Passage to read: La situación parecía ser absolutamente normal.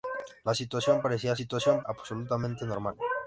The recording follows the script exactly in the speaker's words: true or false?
false